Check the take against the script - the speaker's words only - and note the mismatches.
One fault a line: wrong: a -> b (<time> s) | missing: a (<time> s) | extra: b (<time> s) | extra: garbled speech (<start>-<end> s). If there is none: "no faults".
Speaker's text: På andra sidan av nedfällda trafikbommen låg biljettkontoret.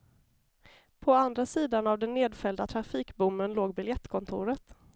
extra: den (2.0 s)